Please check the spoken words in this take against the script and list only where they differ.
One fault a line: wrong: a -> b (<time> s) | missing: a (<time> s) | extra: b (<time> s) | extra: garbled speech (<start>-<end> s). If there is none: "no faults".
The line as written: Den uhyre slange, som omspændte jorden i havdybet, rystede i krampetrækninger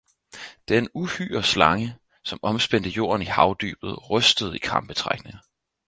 no faults